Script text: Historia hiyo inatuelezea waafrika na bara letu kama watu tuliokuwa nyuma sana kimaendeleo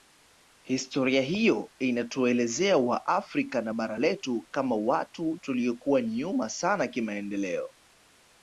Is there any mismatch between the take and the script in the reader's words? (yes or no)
no